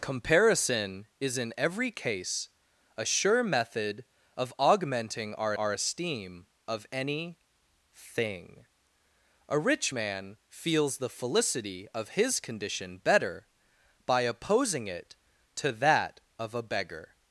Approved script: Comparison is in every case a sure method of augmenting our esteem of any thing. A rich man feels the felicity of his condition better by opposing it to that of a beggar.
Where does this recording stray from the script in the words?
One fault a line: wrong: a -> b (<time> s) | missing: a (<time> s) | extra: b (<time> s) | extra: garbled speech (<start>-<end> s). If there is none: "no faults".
extra: our (5.5 s)